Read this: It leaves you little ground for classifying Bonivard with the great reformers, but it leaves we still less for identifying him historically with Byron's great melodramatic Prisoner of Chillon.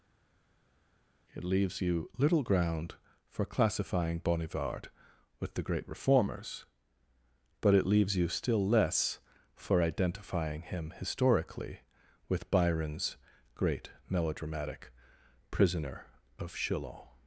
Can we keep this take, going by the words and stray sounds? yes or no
no